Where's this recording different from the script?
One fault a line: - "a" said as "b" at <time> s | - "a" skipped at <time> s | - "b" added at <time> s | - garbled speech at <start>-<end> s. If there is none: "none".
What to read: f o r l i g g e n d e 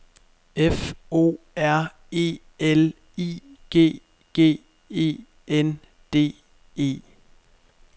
- "e" added at 2.1 s